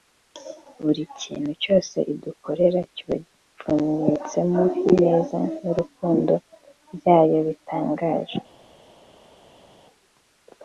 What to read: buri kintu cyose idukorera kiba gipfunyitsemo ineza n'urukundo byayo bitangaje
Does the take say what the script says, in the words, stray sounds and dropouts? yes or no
yes